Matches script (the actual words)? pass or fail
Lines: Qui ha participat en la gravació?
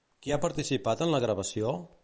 pass